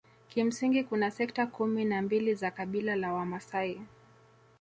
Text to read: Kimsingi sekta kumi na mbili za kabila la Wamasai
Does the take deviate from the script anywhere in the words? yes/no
yes